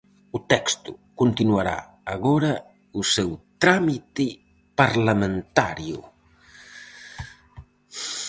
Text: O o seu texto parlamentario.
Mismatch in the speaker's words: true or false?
true